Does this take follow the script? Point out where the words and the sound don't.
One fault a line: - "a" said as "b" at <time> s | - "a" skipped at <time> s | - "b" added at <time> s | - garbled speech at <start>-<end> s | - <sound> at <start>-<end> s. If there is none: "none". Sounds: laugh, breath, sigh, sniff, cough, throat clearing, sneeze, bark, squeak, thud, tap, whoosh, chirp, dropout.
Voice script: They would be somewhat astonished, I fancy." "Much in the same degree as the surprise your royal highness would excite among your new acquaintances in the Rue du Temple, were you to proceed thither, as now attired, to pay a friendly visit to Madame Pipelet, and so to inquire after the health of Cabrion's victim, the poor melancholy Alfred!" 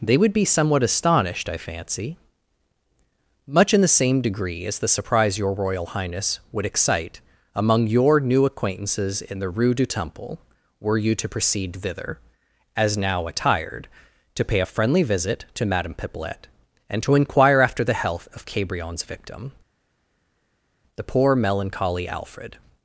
- "so" skipped at 17.0 s